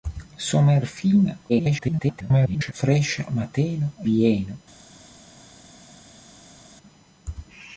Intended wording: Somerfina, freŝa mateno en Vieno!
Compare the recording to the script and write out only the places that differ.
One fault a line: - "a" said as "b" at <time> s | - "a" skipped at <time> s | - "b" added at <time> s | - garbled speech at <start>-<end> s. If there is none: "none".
- garbled speech at 1.5-2.7 s
- "en" skipped at 3.9 s